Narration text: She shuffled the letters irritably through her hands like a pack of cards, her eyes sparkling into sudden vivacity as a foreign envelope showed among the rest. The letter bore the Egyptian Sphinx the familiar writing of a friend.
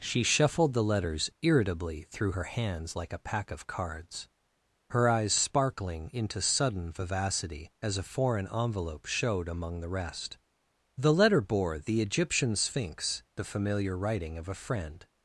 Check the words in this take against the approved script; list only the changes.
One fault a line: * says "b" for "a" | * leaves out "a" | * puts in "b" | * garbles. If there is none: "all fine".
all fine